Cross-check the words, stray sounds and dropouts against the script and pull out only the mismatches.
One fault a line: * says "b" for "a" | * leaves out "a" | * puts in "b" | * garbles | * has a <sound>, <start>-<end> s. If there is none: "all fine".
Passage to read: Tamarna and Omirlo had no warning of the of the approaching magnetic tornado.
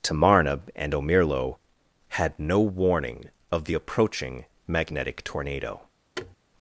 * leaves out "of the"
* has a thud, 6.2-6.4 s